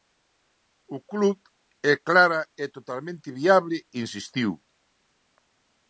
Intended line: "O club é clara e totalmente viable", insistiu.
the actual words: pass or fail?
pass